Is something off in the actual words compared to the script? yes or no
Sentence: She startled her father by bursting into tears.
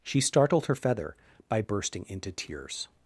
yes